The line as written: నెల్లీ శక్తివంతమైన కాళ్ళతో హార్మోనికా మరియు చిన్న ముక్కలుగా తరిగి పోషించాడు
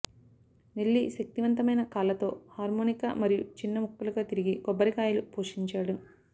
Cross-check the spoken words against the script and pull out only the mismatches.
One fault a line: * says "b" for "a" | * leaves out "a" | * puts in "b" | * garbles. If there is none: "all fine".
* puts in "కొబ్బరికాయలు"